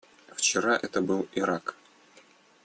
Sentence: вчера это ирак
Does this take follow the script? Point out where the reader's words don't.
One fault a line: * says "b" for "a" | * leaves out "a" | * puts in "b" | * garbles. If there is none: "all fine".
* puts in "был"